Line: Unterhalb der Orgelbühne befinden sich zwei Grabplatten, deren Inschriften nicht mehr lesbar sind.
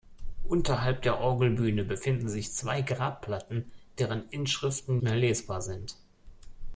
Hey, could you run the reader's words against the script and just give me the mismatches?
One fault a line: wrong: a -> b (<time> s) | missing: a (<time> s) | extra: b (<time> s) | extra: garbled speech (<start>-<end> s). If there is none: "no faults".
missing: nicht (5.0 s)